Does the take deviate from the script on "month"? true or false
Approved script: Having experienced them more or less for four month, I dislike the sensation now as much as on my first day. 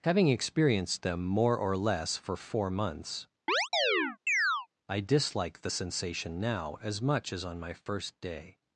true